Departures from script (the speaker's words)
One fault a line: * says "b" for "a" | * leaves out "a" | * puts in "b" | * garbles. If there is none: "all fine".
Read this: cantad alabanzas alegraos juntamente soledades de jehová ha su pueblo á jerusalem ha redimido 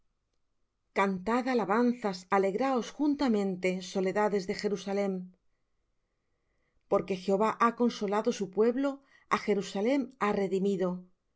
* puts in "jerusalem porque"
* puts in "consolado"